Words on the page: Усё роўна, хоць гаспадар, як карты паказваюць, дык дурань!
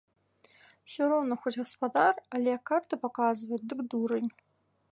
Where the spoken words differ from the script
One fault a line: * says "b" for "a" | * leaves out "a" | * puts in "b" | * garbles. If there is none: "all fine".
* puts in "але"